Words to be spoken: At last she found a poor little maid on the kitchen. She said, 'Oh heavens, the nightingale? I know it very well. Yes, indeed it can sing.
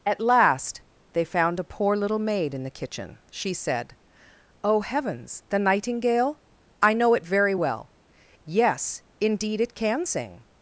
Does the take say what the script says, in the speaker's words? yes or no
no